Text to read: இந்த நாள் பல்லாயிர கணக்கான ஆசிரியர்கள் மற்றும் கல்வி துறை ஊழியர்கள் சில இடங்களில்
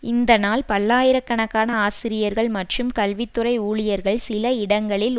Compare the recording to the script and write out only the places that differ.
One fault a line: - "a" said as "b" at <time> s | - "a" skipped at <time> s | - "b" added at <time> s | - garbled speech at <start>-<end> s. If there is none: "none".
none